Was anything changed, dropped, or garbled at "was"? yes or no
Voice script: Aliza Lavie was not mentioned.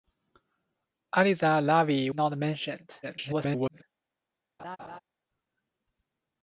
yes